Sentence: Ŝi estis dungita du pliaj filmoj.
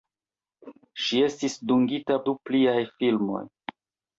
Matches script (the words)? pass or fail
pass